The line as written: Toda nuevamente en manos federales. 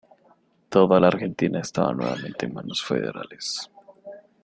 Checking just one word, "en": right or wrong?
right